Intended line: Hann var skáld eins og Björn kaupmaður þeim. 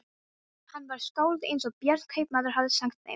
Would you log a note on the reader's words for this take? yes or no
yes